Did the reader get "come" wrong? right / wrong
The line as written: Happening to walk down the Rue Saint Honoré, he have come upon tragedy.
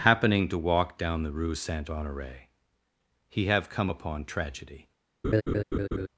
right